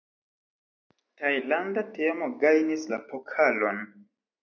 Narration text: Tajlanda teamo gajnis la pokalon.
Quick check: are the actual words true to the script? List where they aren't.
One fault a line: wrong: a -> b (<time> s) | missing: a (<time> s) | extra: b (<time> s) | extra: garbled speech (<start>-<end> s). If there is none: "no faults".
no faults